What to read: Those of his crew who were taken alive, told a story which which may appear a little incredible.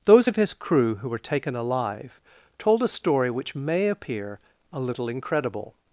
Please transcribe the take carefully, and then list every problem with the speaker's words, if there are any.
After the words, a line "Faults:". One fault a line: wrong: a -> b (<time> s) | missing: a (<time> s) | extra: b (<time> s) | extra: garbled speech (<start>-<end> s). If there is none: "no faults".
Those of his crew who were taken alive, told a story which may appear a little incredible.
Faults:
missing: which (3.6 s)